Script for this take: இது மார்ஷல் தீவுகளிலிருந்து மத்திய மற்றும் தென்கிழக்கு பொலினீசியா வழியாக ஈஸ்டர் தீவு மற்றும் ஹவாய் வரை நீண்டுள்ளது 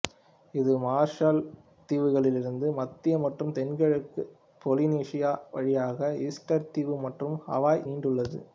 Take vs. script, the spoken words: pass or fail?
fail